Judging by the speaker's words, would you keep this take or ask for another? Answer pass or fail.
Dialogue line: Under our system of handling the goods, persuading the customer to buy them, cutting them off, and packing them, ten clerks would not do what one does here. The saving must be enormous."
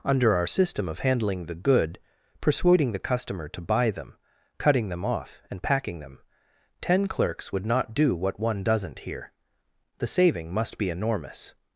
fail